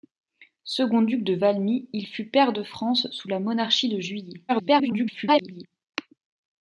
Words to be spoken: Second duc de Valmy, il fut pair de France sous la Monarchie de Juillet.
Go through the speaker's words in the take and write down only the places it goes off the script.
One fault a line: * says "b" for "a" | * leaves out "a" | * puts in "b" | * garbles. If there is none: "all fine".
* garbles